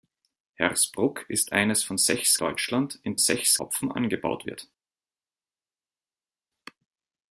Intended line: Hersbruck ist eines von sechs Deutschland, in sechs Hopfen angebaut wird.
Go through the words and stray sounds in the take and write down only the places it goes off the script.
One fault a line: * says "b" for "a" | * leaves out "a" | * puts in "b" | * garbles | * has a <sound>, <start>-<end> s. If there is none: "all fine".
all fine